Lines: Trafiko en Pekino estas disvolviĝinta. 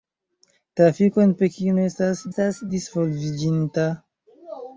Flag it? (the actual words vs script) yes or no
yes